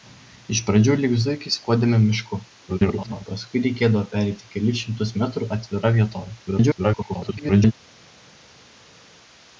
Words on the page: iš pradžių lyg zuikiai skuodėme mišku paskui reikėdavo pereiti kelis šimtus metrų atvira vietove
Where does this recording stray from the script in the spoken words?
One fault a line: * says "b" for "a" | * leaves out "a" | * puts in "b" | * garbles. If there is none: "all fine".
* garbles
* garbles